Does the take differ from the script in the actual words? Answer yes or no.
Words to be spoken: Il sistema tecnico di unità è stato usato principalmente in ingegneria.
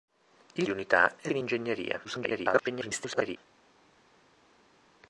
yes